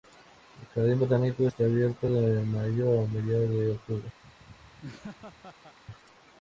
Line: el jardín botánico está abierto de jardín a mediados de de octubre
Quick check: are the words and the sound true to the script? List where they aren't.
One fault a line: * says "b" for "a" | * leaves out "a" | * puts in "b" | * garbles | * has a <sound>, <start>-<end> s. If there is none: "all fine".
* says "mayo" for "jardín"
* leaves out "de"
* has a laugh, 4.2-5.8 s